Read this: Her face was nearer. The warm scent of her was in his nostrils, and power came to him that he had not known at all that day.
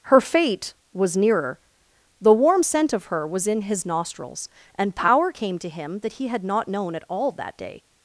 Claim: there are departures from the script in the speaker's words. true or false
true